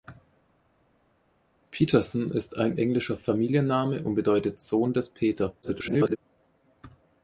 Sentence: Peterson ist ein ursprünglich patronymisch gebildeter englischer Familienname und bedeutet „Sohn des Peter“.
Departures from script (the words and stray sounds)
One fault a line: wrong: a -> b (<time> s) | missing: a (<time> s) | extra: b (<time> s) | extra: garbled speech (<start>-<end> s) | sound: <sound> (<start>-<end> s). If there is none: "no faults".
missing: ursprünglich patronymisch gebildeter (2.8 s)
extra: garbled speech (5.6-6.2 s)